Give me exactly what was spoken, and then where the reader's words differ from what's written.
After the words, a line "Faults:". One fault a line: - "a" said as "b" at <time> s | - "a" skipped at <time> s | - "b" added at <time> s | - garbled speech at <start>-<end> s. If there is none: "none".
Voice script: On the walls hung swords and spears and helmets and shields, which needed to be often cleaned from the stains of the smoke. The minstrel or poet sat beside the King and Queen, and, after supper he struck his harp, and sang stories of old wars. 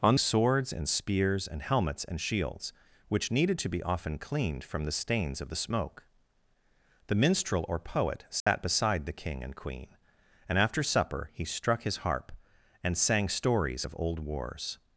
On swords and spears and helmets and shields, which needed to be often cleaned from the stains of the smoke. The minstrel or poet sat beside the King and Queen, and, after supper he struck his harp, and sang stories of old wars.
Faults:
- "the walls hung" skipped at 0.1 s